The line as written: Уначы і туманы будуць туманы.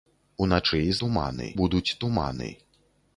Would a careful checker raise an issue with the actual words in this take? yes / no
no